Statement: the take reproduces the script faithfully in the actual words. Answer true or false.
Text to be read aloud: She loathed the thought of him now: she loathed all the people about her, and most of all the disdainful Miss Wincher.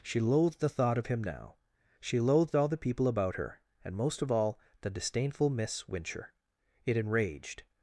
false